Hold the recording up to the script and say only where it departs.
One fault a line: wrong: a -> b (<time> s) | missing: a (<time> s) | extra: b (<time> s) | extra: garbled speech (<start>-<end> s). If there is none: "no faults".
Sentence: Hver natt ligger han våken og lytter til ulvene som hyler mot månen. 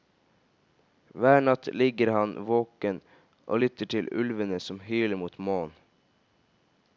no faults